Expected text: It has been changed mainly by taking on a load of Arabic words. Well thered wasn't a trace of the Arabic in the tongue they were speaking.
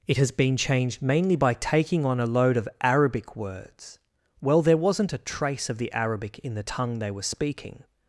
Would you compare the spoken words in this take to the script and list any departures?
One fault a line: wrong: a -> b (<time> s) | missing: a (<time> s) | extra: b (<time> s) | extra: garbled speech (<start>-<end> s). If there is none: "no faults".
wrong: thered -> there (4.6 s)